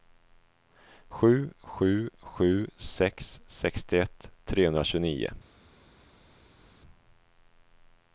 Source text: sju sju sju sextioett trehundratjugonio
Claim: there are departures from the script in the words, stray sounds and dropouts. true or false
true